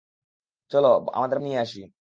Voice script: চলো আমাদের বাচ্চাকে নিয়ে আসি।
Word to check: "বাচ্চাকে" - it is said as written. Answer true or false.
false